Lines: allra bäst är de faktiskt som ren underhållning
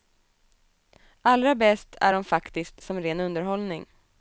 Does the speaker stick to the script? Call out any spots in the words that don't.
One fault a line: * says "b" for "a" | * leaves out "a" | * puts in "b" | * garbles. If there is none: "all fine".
all fine